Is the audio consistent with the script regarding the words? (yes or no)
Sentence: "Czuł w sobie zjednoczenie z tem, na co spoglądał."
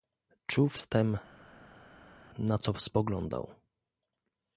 no